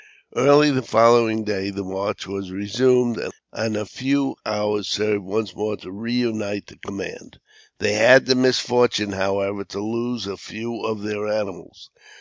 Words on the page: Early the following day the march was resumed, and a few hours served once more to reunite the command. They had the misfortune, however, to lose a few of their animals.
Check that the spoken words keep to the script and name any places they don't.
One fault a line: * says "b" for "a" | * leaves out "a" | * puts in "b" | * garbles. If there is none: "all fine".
all fine